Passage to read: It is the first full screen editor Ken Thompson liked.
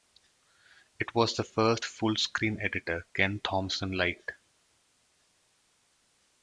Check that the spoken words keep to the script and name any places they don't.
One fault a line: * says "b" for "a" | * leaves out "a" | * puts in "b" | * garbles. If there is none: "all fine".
* says "was" for "is"